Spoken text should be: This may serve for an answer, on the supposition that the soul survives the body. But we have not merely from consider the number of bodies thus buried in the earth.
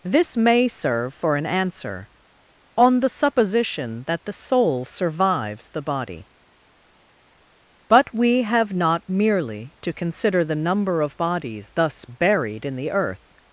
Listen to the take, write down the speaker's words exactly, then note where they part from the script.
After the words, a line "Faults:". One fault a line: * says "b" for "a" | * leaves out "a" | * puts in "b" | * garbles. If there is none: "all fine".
This may serve for an answer, on the supposition that the soul survives the body. But we have not merely to consider the number of bodies thus buried in the earth.
Faults:
* says "to" for "from"